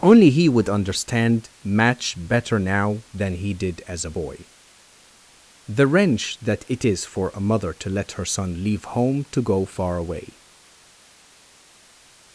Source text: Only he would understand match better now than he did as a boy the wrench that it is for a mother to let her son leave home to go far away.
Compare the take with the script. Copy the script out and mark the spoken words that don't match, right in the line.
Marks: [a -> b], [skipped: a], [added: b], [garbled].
Only he would understand match better now than he did as a boy the wrench that it is for a mother to let her son leave home to go far away.